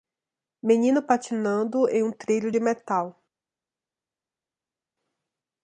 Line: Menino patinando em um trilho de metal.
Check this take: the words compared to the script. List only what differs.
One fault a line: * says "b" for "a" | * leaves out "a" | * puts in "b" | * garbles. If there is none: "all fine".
all fine